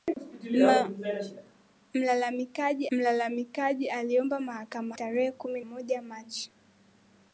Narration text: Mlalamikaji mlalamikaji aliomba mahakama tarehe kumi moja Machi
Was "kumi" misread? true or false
false